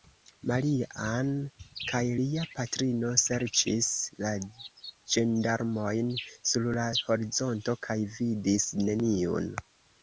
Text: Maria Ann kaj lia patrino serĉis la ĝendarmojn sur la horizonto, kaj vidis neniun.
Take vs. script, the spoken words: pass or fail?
pass